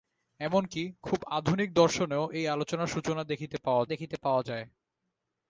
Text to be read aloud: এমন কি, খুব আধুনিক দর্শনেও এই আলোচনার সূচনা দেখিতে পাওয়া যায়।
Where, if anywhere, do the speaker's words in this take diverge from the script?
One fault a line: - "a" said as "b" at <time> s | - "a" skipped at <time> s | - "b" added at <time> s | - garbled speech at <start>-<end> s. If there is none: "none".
- "দেখিতে পাওয়া" added at 3.8 s